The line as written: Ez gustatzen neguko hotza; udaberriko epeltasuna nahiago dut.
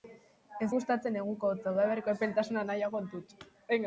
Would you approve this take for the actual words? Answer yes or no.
yes